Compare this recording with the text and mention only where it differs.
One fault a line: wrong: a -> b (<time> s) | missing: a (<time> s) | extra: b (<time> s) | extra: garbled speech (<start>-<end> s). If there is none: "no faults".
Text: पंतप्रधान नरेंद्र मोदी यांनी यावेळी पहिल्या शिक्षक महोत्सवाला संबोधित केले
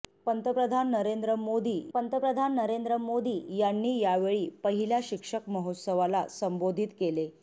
extra: पंतप्रधान नरेंद्र मोदी (1.9 s)